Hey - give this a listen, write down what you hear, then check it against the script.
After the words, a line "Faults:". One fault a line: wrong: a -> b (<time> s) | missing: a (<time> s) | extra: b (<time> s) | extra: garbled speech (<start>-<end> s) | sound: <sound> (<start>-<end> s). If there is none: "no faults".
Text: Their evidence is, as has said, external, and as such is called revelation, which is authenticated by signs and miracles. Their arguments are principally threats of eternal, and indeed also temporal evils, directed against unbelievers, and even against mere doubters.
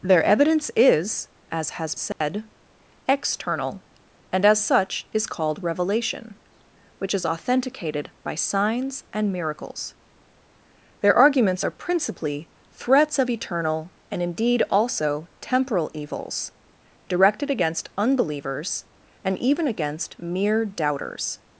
Their evidence is, as has said, external, and as such is called revelation, which is authenticated by signs and miracles. Their arguments are principally threats of eternal, and indeed also temporal evils, directed against unbelievers, and even against mere doubters.
Faults:
sound: dropout (2.1-2.2 s)